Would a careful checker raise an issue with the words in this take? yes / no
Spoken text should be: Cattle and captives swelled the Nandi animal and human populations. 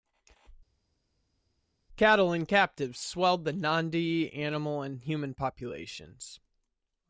no